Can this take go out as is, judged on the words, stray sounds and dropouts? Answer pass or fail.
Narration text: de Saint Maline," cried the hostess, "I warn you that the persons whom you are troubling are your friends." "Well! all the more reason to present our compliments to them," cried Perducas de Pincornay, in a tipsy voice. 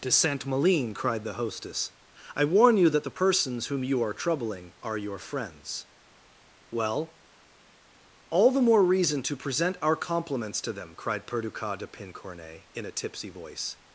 pass